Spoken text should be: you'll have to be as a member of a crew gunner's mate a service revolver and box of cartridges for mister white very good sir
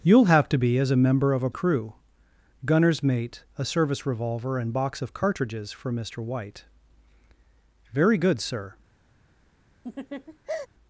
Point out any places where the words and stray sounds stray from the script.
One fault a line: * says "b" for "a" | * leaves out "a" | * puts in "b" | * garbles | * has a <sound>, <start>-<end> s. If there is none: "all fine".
* has a laugh, 9.8-10.7 s